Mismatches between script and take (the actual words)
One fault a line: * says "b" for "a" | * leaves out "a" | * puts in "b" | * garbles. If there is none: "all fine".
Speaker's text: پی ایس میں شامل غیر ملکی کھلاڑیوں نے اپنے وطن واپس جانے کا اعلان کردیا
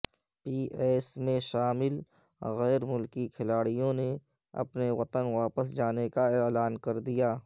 all fine